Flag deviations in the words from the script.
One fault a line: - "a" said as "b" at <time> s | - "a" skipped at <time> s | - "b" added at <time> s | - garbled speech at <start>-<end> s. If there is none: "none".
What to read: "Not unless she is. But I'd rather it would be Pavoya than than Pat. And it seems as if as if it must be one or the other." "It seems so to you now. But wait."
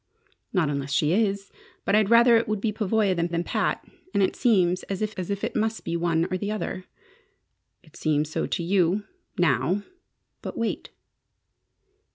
none